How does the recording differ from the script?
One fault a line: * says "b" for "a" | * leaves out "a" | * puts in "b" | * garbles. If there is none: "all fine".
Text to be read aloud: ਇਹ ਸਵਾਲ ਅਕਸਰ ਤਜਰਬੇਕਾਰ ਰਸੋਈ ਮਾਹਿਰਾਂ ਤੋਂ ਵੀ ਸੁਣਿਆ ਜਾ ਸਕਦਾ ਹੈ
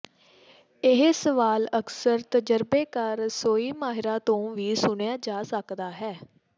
all fine